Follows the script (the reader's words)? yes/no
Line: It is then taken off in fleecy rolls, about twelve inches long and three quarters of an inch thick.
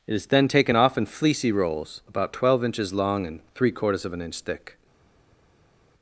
yes